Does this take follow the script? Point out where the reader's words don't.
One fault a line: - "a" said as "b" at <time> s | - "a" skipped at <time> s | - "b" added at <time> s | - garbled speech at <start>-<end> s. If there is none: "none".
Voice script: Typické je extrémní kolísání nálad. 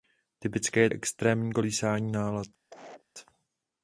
none